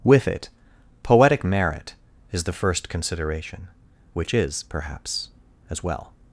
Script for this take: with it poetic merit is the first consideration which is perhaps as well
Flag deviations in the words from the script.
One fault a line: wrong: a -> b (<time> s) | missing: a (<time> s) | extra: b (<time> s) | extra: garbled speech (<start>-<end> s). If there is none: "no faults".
no faults